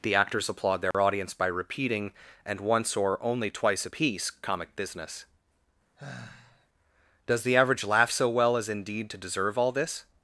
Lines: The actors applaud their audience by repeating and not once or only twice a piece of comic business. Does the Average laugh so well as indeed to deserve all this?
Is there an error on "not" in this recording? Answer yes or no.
yes